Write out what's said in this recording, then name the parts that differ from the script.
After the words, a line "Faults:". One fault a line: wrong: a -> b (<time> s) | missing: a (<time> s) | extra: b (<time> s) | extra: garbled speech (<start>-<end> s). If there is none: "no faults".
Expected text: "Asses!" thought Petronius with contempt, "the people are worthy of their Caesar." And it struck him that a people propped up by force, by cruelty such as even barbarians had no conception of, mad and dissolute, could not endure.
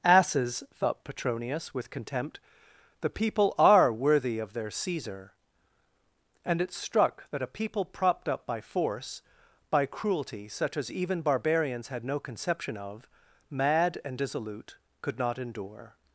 "Asses!" thought Petronius with contempt, "the people are worthy of their Caesar." And it struck that a people propped up by force, by cruelty such as even barbarians had no conception of, mad and dissolute, could not endure.
Faults:
missing: him (7.3 s)